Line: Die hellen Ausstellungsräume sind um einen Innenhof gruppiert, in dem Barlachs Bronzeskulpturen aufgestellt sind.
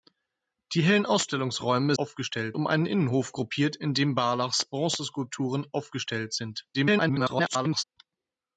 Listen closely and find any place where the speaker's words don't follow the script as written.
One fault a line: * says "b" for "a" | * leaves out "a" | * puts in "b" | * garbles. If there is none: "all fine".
* says "aufgestellt" for "sind"
* garbles